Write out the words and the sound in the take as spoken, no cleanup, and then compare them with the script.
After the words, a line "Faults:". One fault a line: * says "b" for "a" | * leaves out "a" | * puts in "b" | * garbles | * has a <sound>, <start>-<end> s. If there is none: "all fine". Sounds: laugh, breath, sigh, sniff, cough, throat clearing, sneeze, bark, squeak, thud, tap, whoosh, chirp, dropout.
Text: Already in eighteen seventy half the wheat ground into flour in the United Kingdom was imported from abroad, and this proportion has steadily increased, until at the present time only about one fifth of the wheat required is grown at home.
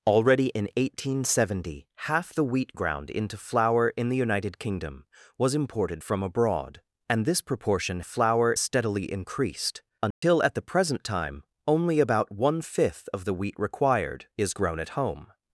Already in eighteen seventy half the wheat ground into flour in the United Kingdom was imported from abroad, and this proportion flour steadily increased, until at the present time only about one fifth of the wheat required is grown at home.
Faults:
* says "flour" for "has"
* has a dropout, 10.1-10.2 s